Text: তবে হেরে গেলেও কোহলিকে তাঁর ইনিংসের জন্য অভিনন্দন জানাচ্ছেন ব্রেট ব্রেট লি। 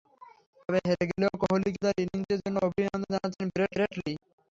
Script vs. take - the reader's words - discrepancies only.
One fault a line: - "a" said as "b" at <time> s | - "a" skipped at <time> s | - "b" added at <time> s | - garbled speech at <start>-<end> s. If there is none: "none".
none